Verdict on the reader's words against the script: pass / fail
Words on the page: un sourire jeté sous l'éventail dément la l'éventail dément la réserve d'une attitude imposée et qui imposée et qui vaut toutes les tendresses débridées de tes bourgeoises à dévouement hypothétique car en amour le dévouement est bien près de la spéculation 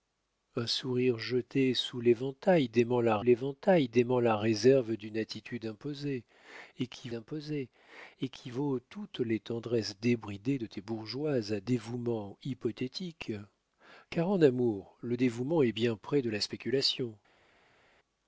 pass